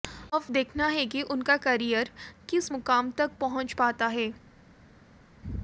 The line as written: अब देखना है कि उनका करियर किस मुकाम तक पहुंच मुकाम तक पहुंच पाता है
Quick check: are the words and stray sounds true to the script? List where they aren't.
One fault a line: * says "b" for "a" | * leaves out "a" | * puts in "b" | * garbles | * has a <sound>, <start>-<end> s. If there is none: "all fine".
* leaves out "मुकाम तक पहुंच"